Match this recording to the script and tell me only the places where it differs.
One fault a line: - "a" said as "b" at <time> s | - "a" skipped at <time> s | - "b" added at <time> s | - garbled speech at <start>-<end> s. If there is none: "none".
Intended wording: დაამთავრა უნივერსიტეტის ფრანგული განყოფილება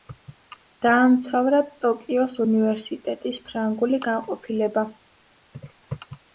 - "ტოკიოს" added at 1.9 s